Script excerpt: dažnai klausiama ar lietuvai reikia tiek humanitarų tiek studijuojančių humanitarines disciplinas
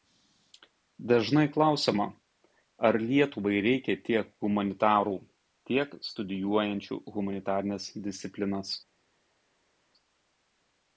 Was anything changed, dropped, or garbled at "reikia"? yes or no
no